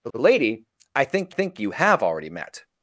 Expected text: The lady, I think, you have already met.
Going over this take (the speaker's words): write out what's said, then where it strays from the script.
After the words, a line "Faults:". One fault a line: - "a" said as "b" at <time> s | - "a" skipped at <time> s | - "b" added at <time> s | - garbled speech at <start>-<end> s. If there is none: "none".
The the lady, I think think, you have already met.
Faults:
- "the" added at 0.1 s
- "think" added at 1.3 s